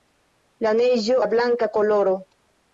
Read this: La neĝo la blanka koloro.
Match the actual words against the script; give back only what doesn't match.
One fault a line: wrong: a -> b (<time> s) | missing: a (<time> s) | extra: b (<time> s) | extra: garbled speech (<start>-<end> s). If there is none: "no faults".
no faults